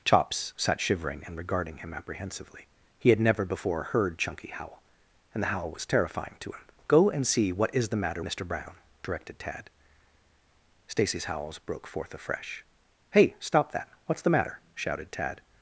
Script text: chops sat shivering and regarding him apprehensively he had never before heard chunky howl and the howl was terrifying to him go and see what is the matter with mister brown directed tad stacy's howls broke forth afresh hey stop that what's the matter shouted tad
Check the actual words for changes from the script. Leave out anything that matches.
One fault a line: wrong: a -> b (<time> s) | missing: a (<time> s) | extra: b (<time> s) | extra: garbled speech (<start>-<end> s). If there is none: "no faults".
missing: with (8.2 s)